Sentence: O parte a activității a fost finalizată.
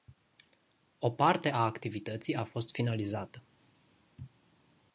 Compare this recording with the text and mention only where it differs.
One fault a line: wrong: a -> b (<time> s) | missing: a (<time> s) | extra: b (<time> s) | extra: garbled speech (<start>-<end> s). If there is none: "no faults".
no faults